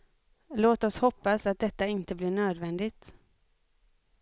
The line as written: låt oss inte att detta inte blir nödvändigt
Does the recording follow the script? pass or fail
fail